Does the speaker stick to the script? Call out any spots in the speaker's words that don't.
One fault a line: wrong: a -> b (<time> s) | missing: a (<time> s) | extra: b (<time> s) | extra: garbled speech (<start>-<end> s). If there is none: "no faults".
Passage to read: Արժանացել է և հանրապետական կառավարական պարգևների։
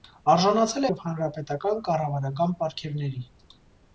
no faults